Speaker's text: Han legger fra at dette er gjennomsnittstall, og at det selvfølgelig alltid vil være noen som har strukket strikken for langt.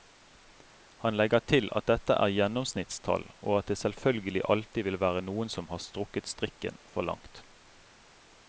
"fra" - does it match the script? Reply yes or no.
no